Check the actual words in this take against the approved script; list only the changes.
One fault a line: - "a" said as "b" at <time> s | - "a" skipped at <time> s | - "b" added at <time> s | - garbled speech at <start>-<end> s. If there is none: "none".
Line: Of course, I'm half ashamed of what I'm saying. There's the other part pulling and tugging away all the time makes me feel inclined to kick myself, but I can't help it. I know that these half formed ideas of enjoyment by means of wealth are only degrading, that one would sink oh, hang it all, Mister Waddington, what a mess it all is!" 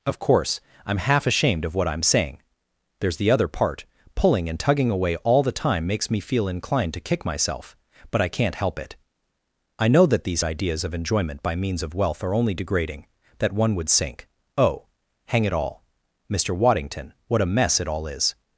- "half formed" skipped at 10.4 s